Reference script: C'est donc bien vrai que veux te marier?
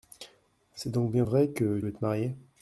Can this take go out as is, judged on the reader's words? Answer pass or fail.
pass